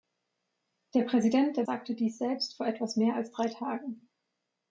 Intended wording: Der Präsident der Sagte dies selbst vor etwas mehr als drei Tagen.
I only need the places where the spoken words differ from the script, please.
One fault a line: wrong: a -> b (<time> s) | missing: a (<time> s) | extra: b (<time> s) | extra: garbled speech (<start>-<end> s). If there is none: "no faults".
no faults